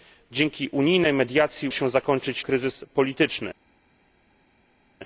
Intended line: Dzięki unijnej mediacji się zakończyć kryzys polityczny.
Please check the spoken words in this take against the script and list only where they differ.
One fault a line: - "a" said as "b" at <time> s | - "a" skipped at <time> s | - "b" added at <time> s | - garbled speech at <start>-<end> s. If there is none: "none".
none